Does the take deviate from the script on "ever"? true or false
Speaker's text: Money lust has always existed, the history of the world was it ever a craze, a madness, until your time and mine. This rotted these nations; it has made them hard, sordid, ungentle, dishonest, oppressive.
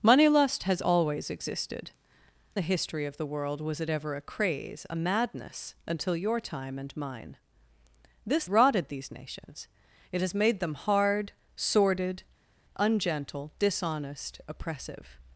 false